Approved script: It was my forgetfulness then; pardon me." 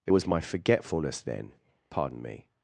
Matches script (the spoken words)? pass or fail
pass